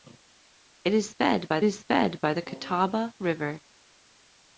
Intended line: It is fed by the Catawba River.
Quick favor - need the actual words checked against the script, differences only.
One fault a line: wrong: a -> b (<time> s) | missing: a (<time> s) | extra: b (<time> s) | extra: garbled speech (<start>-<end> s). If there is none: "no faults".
extra: is fed by (1.6 s)